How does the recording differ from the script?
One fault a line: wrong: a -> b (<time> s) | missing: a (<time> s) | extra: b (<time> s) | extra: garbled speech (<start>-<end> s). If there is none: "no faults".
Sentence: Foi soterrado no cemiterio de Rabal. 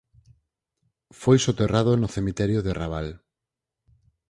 no faults